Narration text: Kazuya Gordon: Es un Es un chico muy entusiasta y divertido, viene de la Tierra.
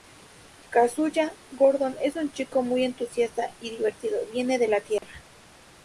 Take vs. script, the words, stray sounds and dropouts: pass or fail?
fail